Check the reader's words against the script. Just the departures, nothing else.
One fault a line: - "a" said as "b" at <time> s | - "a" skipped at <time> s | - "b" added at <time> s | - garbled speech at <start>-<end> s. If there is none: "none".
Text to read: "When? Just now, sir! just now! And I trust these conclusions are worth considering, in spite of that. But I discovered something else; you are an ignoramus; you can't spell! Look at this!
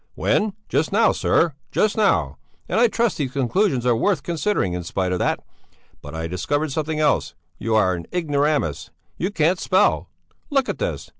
none